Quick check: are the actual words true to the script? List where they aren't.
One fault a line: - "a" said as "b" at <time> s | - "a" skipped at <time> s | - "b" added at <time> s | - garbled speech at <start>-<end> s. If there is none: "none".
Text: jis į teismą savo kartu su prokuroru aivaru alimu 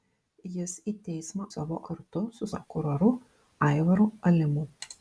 none